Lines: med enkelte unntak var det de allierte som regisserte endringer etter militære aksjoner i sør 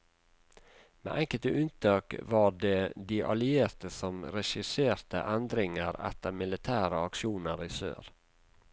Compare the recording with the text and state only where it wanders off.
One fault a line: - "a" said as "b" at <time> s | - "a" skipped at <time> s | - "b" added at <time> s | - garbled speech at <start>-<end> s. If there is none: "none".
none